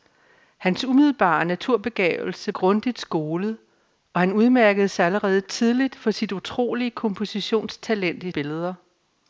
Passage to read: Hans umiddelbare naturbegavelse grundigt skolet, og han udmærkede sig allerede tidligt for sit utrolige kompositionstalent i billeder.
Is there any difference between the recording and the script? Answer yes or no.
no